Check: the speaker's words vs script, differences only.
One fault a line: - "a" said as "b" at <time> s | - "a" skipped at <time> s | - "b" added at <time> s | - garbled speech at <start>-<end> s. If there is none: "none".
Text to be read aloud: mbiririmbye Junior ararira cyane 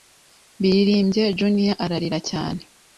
none